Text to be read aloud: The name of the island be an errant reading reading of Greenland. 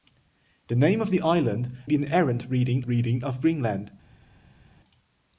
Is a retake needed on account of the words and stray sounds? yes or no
no